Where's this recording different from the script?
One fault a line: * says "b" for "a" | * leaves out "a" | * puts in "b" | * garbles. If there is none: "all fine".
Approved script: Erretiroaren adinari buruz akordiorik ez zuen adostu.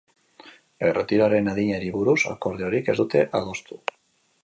* says "dute" for "zuen"